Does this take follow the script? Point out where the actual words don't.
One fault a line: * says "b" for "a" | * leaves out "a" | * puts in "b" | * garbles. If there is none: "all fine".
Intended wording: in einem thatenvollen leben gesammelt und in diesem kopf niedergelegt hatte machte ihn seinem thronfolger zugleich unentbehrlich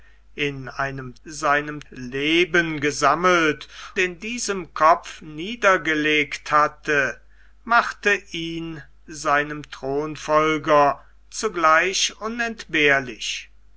* says "seinem" for "thatenvollen"
* leaves out "und"